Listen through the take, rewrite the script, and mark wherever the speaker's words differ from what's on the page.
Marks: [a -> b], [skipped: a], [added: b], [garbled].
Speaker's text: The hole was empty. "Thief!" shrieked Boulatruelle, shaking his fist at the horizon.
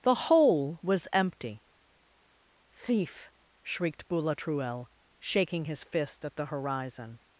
The hole was empty. "Thief!" shrieked Boulatruelle, shaking his fist at the horizon.